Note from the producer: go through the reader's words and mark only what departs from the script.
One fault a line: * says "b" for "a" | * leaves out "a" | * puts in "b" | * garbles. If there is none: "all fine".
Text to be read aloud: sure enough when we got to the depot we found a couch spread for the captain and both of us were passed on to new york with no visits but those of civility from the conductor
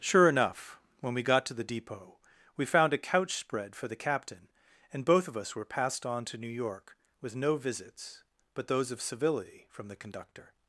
all fine